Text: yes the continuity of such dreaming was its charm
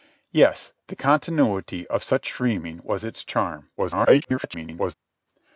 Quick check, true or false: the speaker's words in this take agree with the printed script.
false